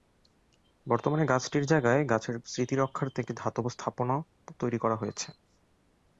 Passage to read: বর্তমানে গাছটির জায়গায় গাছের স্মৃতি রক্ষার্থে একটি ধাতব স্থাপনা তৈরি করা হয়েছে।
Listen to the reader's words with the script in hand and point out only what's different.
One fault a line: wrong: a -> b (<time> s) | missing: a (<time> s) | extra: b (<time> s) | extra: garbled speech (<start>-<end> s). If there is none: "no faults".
no faults